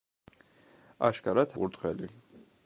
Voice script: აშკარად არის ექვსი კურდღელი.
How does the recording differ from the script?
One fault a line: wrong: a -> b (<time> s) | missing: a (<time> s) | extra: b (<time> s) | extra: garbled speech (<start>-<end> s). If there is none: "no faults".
missing: არის ექვსი (1.5 s)